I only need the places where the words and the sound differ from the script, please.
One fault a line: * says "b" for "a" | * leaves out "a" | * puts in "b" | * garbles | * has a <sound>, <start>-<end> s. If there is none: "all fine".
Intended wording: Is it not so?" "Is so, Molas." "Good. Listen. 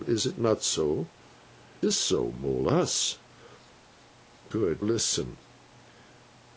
all fine